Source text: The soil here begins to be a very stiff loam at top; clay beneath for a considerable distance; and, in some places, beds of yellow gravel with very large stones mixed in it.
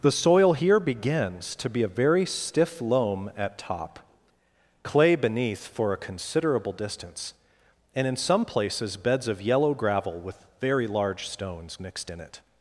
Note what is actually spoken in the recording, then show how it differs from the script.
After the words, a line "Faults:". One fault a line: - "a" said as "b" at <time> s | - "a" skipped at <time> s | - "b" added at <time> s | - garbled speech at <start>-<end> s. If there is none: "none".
The soil here begins to be a very stiff loam at top; clay beneath for a considerable distance; and, in some places, beds of yellow gravel with very large stones mixed in it.
Faults:
none